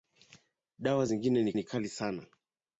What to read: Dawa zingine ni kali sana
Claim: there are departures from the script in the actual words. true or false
true